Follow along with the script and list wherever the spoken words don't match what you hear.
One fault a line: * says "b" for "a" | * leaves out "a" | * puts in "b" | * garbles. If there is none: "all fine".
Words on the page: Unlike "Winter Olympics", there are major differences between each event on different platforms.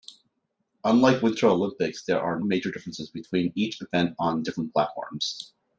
all fine